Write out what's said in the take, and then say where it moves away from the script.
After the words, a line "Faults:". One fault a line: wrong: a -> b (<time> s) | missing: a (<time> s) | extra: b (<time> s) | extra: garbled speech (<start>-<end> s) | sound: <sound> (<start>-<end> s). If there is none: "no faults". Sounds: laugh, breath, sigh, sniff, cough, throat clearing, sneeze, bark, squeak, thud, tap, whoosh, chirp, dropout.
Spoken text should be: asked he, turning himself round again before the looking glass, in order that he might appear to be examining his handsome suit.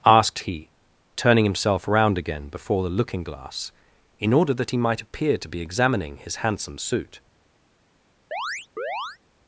asked he, turning himself round again before the looking glass, in order that he might appear to be examining his handsome suit.
Faults:
sound: chirp (8.3-9.2 s)